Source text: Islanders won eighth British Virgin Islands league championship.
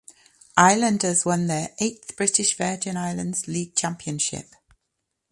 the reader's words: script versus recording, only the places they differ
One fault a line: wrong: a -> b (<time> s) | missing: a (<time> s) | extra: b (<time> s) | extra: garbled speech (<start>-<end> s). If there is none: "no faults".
extra: their (1.5 s)